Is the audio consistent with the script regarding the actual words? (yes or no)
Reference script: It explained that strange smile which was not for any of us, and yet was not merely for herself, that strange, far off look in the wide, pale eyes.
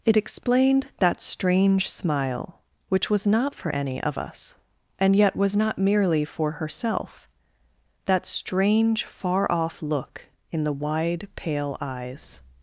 yes